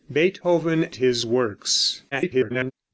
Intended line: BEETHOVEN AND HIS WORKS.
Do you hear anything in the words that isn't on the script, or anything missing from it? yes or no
yes